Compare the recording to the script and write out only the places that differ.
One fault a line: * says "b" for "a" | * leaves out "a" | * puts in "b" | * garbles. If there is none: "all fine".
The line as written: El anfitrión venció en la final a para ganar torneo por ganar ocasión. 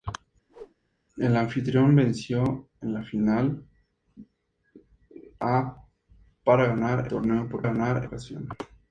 all fine